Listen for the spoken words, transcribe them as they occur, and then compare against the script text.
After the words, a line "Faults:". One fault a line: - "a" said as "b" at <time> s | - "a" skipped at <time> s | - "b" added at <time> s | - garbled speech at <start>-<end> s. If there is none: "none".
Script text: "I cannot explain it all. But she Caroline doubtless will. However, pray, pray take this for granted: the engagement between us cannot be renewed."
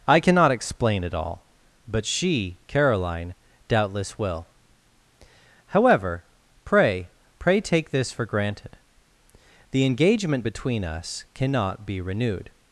"I cannot explain it all. But she Caroline doubtless will. However, pray, pray take this for granted: the engagement between us cannot be renewed."
Faults:
none